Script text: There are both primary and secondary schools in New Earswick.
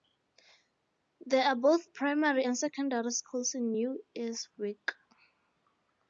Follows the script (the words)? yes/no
yes